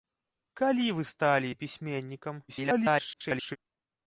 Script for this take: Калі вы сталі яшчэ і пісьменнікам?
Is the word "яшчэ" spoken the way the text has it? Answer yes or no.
no